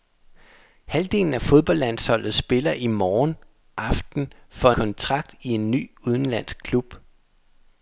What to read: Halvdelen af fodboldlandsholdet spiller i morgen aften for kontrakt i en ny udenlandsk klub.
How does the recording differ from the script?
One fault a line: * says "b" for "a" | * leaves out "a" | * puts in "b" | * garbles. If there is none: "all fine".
all fine